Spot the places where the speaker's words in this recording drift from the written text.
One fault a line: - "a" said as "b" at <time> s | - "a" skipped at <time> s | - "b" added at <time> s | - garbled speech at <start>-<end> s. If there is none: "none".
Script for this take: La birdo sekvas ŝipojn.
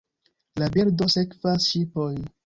none